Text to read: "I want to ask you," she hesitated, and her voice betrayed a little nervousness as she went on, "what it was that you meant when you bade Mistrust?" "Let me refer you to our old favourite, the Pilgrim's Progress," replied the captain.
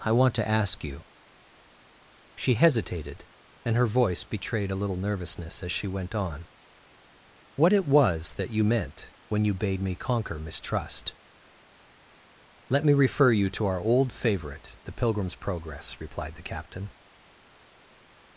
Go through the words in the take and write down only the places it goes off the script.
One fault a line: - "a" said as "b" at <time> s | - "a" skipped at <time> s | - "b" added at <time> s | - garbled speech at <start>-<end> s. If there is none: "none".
- "me conquer" added at 9.8 s